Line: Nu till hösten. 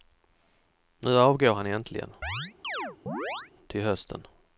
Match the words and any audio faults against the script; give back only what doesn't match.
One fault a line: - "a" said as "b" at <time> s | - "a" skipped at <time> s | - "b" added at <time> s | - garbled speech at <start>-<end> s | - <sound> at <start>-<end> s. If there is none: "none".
- "avgår han äntligen" added at 1.2 s
- chirp at 2.2-3.5 s